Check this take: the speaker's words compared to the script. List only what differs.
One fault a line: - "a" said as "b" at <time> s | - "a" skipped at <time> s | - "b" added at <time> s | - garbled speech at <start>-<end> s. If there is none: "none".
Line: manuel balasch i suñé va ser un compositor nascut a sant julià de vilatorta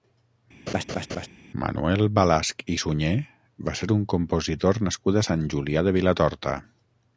none